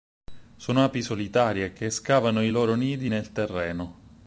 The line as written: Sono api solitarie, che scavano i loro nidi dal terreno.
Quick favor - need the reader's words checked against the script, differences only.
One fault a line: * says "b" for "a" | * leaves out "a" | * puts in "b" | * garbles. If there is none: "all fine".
* says "nel" for "dal"